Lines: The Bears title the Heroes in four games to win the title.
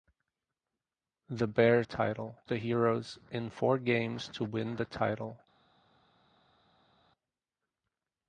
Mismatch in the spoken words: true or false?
false